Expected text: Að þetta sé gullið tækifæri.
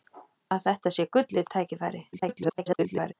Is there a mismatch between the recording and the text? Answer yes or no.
yes